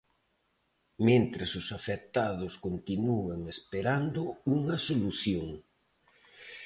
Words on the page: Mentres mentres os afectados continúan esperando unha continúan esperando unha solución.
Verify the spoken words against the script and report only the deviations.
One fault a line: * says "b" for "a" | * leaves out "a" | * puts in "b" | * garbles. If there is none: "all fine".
* leaves out "mentres"
* leaves out "continúan esperando unha"